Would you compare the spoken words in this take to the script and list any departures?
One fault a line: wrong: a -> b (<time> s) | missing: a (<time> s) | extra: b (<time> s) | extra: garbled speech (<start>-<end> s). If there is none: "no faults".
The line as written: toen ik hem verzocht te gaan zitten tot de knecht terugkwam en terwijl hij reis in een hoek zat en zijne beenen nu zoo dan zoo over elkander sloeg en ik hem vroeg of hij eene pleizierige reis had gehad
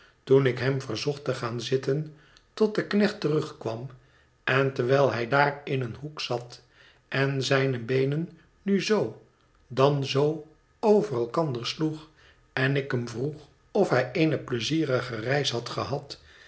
wrong: reis -> daar (5.3 s)